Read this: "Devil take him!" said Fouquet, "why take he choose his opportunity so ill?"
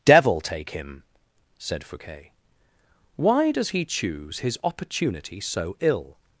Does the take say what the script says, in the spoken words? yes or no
no